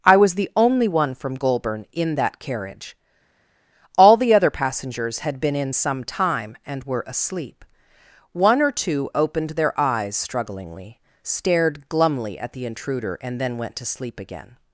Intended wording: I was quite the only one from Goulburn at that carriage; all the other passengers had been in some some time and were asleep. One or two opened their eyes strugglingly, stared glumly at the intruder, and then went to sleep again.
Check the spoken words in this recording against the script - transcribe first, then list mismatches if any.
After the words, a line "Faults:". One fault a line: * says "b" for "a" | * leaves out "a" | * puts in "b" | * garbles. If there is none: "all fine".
I was the only one from Goulburn in that carriage; all the other passengers had been in some time and were asleep. One or two opened their eyes strugglingly, stared glumly at the intruder, and then went to sleep again.
Faults:
* leaves out "quite"
* says "in" for "at"
* leaves out "some"